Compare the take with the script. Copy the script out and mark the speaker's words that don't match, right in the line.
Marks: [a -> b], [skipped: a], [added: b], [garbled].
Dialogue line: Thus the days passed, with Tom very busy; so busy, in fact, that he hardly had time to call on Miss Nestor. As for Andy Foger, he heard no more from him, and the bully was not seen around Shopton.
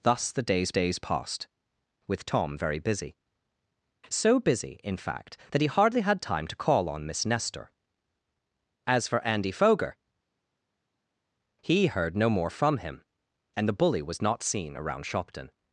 Thus the days [added: days] passed, with Tom very busy; so busy, in fact, that he hardly had time to call on Miss Nestor. As for Andy Foger, he heard no more from him, and the bully was not seen around Shopton.